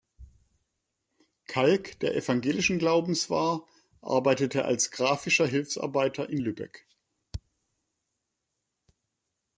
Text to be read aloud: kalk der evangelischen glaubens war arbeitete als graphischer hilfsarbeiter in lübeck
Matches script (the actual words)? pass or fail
pass